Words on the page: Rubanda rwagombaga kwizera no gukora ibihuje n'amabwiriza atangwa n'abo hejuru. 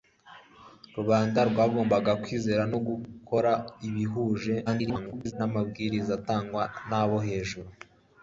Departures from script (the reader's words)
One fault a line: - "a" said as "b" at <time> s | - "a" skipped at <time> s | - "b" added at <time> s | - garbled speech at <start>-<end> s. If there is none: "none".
- garbled speech at 4.7-5.3 s